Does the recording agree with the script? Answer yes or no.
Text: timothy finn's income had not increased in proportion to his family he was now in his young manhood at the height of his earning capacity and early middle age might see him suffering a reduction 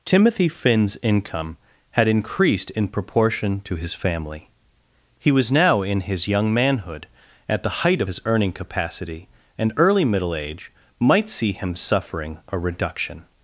no